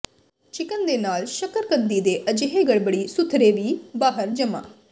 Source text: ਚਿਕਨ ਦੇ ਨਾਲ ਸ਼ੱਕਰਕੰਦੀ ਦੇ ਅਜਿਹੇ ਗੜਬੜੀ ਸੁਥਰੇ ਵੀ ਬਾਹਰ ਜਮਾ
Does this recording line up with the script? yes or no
yes